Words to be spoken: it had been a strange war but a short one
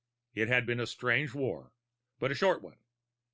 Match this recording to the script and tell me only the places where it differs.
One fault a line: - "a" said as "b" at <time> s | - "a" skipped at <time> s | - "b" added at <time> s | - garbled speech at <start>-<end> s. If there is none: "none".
none